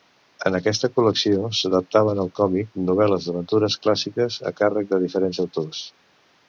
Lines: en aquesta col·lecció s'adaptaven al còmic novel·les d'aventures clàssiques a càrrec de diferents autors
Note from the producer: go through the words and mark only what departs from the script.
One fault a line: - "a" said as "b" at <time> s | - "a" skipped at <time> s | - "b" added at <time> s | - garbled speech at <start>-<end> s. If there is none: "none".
none